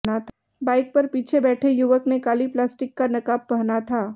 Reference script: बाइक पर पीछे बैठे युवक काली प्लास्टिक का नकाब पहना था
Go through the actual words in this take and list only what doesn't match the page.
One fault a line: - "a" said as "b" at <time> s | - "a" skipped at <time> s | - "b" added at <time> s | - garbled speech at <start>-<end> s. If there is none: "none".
- "ने" added at 2.1 s